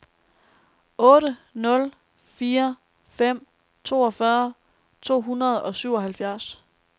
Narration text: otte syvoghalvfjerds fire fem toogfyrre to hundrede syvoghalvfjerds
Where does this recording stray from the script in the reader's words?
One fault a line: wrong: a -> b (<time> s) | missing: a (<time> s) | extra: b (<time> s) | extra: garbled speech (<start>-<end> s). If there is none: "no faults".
wrong: syvoghalvfjerds -> nul (1.5 s)
extra: og (5.6 s)